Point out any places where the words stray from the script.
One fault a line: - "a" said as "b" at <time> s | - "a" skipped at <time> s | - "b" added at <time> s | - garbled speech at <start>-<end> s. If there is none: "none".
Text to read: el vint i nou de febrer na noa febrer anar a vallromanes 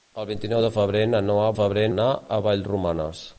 none